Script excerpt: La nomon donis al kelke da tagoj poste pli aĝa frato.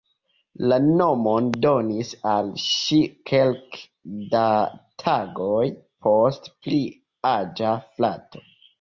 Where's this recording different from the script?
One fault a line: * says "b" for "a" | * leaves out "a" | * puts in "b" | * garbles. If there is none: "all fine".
* puts in "ŝi"